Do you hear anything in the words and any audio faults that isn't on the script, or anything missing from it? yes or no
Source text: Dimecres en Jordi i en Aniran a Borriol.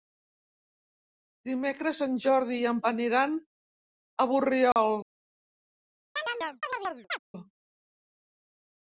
yes